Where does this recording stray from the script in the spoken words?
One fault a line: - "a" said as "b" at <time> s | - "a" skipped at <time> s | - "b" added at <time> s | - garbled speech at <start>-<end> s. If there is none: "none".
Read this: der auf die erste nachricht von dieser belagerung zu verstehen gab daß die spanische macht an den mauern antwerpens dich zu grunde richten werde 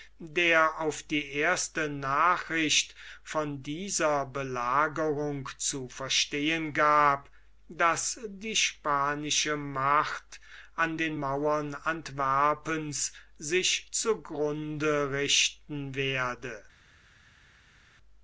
- "dich" said as "sich" at 13.4 s